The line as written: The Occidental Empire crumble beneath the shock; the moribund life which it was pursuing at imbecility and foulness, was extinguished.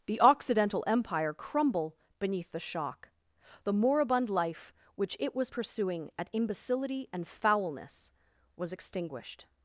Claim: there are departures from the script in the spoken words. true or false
false